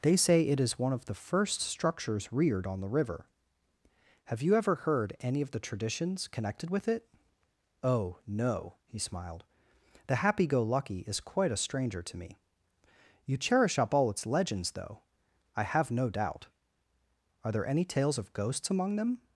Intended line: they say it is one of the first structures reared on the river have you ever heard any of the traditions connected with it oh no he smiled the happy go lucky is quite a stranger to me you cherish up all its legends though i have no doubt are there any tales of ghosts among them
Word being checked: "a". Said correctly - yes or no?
yes